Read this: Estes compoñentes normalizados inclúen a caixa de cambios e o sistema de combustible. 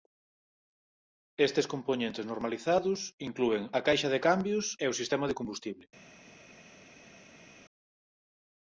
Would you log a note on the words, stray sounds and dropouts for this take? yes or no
no